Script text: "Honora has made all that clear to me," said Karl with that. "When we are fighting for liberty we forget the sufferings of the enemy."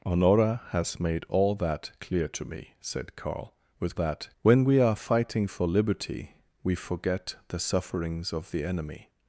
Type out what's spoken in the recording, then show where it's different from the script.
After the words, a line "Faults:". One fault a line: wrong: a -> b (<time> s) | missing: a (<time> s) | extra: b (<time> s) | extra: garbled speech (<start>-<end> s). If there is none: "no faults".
"Honora has made all that clear to me," said Karl with that. "When we are fighting for liberty we forget the sufferings of the enemy."
Faults:
no faults